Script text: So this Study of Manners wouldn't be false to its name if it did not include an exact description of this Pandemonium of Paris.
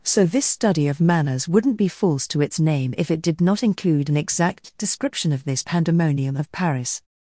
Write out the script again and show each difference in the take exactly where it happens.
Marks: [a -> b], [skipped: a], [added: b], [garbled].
So this Study of Manners wouldn't be false to its name if it did not include an exact description of this Pandemonium of Paris.